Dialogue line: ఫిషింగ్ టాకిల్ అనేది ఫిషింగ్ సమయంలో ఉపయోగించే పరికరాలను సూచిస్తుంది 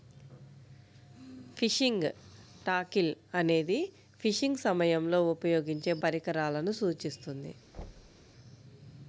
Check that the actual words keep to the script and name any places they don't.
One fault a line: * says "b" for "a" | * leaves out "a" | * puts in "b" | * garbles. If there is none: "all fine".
all fine